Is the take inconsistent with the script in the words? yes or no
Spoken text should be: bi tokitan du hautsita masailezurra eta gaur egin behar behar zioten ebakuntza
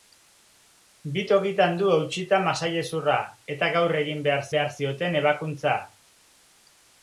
no